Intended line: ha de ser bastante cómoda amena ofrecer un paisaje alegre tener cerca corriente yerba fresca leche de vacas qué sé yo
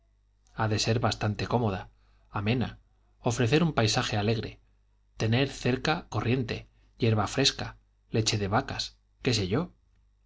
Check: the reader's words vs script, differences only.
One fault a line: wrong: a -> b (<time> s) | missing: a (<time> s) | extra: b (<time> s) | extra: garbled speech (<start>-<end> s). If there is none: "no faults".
no faults